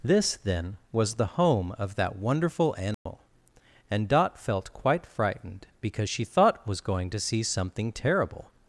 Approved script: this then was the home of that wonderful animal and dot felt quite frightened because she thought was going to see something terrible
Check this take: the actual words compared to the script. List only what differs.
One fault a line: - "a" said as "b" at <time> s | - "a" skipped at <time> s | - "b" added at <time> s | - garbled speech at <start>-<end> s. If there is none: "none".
none